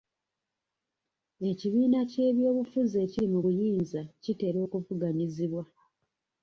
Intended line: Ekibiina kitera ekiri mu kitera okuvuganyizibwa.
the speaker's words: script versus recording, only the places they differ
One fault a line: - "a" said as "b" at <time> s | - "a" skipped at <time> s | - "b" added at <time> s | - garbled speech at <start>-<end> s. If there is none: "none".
- "kitera" said as "ky'ebyobufuzi" at 2.1 s
- "buyinza" added at 3.4 s